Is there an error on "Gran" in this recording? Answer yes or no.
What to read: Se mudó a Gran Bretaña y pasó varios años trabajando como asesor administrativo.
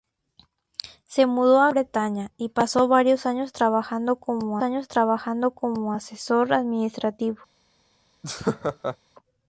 yes